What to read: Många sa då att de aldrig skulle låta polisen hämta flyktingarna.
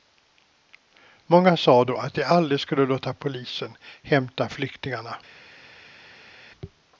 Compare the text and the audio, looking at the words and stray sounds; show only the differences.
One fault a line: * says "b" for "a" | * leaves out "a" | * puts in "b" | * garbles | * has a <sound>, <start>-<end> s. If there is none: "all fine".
all fine